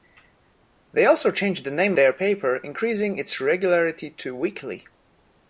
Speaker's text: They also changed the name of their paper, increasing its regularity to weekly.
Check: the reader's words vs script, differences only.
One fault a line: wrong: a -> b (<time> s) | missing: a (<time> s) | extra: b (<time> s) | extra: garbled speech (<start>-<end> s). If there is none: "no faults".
missing: of (1.9 s)